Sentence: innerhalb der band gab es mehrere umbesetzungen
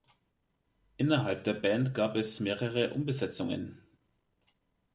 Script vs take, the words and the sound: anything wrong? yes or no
no